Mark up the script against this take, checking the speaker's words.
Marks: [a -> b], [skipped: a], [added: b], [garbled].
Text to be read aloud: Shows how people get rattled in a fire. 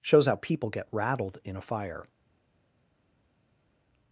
Shows how people get rattled in a fire.